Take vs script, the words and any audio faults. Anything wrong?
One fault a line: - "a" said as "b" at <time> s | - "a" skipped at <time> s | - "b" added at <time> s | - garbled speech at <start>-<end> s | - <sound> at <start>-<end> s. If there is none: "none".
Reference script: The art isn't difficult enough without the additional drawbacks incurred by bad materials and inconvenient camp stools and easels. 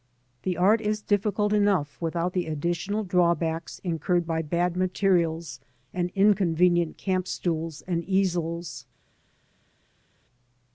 - "isn't" said as "is" at 0.8 s